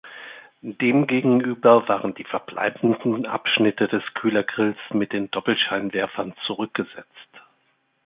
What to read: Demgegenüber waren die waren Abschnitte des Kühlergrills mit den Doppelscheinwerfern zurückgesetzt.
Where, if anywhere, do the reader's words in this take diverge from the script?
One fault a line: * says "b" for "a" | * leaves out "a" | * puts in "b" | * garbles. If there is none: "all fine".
* says "verbleibenden" for "waren"